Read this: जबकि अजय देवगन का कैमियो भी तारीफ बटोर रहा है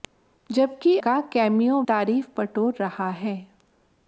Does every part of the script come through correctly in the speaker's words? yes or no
no